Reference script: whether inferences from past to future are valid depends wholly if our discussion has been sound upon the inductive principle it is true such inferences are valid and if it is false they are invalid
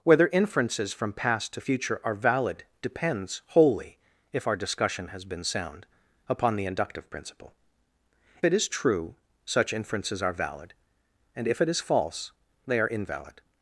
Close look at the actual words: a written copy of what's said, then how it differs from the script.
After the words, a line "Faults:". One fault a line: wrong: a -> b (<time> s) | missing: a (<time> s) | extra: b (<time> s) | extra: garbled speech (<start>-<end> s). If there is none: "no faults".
whether inferences from past to future are valid depends wholly if our discussion has been sound upon the inductive principle it is true such inferences are valid and if it is false they are invalid
Faults:
no faults